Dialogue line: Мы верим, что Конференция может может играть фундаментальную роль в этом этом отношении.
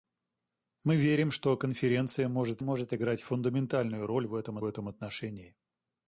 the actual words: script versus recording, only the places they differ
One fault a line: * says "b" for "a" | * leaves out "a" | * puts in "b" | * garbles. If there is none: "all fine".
all fine